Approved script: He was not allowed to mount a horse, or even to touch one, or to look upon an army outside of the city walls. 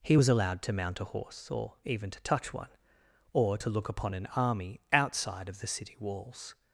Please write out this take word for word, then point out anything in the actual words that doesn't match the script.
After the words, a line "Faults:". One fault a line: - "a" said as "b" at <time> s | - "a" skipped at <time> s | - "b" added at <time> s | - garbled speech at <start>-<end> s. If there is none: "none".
He was allowed to mount a horse, or even to touch one, or to look upon an army outside of the city walls.
Faults:
- "not" skipped at 0.3 s